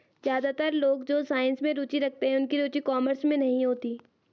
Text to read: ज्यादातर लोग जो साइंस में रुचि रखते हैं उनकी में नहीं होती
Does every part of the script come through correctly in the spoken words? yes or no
no